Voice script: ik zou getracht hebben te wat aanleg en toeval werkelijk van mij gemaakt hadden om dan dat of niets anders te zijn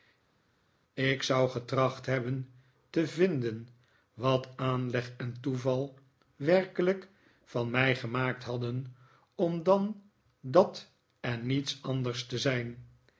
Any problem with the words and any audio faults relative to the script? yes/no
yes